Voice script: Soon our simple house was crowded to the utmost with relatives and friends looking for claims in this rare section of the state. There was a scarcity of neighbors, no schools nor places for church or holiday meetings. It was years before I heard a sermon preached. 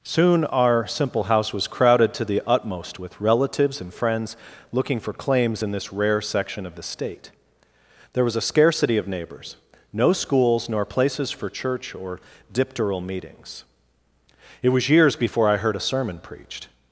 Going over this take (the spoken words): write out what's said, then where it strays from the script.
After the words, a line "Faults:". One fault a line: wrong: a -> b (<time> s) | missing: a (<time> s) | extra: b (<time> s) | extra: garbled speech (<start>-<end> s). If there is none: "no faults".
Soon our simple house was crowded to the utmost with relatives and friends looking for claims in this rare section of the state. There was a scarcity of neighbors, no schools nor places for church or dipteral meetings. It was years before I heard a sermon preached.
Faults:
wrong: holiday -> dipteral (12.5 s)